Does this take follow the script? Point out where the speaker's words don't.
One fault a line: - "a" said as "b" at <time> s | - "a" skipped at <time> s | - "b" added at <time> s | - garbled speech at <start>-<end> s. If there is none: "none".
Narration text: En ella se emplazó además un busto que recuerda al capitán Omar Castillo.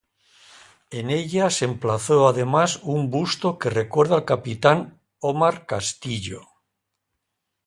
none